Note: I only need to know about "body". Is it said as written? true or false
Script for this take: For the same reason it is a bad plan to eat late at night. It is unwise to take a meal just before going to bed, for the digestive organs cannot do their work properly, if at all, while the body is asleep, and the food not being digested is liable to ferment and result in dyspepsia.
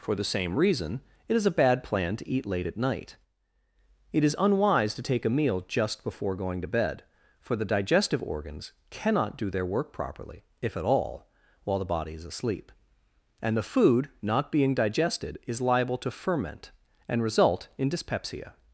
true